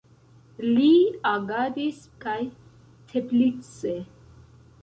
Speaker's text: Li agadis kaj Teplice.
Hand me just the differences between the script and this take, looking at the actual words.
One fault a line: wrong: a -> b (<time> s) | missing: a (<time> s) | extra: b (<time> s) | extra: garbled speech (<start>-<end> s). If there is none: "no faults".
no faults